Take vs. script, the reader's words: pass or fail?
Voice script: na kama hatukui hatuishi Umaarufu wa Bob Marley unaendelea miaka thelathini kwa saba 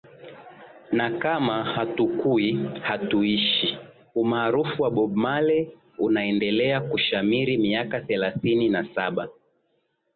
fail